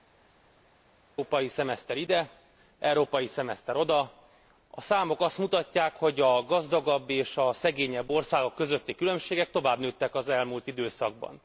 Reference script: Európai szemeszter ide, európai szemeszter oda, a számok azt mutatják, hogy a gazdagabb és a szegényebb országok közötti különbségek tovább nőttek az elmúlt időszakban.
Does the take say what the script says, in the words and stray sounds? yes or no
yes